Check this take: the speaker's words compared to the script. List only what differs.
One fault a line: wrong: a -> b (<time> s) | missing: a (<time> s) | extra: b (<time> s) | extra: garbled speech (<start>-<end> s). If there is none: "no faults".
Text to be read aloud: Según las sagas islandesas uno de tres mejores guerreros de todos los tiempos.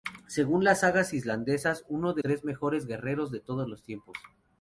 no faults